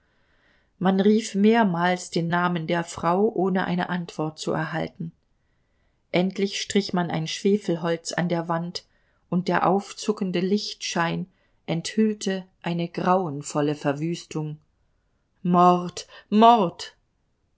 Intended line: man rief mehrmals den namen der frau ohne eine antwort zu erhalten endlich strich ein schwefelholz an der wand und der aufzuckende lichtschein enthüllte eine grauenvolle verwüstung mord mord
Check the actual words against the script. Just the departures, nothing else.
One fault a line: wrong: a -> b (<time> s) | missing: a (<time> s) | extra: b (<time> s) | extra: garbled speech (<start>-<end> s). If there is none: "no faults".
extra: man (6.9 s)